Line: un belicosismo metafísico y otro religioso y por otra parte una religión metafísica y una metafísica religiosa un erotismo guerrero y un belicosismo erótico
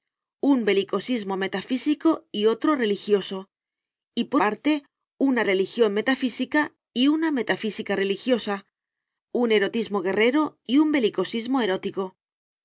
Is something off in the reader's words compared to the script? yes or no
yes